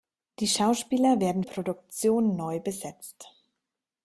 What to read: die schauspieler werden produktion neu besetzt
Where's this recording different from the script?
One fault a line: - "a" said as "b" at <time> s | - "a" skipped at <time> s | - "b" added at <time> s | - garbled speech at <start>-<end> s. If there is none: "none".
none